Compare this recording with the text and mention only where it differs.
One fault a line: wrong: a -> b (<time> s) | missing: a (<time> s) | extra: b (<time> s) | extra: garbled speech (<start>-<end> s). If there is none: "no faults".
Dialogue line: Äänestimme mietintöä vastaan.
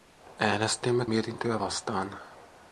no faults